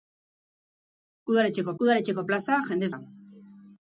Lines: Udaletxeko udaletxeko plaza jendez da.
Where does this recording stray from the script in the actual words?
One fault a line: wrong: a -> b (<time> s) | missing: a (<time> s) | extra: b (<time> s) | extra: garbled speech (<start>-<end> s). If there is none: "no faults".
no faults